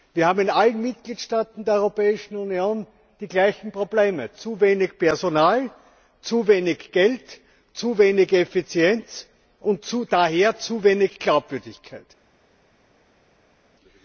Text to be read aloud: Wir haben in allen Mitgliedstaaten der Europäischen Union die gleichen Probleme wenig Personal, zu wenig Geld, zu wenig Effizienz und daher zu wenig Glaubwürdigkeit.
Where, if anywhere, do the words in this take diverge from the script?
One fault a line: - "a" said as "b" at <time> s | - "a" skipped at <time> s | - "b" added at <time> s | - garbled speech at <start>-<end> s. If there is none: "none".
- "zu" added at 4.3 s